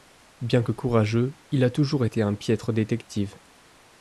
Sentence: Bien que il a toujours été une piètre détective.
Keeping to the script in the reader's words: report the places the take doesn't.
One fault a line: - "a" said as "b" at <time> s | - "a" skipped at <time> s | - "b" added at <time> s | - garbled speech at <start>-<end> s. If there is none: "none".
- "courageux" added at 0.7 s
- "une" said as "un" at 2.2 s